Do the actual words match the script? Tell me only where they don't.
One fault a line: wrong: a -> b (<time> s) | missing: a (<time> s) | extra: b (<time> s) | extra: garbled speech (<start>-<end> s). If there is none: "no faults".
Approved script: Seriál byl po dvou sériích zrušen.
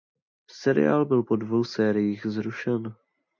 no faults